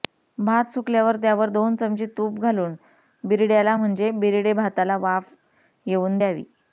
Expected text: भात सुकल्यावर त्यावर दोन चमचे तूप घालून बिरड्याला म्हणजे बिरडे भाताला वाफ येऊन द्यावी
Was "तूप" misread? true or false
false